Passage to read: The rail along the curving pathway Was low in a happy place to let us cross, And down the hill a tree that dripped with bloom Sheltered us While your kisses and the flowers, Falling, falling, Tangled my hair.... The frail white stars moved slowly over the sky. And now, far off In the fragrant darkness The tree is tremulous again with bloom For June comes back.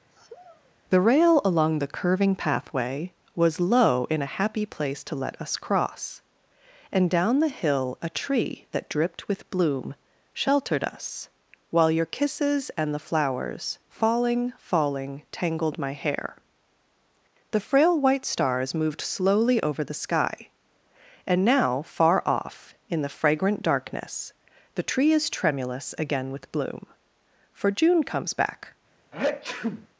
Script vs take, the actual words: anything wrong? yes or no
no